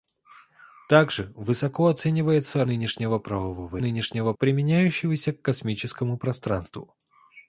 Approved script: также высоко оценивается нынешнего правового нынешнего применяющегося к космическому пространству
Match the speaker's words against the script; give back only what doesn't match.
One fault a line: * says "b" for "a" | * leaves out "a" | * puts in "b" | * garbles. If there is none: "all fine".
all fine